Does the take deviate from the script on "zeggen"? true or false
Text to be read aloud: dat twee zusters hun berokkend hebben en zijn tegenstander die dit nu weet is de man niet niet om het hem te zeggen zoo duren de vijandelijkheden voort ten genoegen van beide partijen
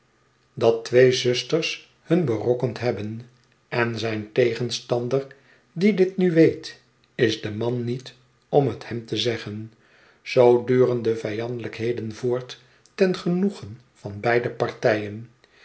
false